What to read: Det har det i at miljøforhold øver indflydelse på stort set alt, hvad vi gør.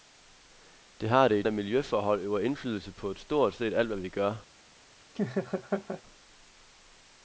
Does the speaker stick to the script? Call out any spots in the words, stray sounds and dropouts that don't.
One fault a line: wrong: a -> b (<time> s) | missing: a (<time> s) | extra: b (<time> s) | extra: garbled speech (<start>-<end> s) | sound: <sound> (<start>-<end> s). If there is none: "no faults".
sound: laugh (5.2-6.0 s)